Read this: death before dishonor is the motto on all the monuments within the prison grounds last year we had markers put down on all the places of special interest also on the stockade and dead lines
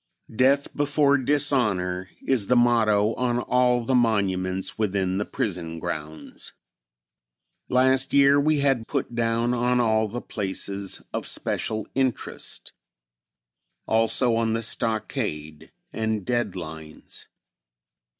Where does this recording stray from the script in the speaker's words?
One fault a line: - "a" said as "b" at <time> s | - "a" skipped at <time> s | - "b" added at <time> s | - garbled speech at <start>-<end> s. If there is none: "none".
- "markers" skipped at 8.8 s